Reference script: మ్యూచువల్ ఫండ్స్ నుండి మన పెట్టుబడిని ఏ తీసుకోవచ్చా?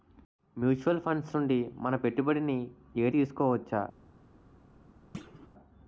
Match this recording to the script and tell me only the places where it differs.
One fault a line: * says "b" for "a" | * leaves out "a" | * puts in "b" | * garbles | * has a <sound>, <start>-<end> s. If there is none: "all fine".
* has a thud, 5.1-5.5 s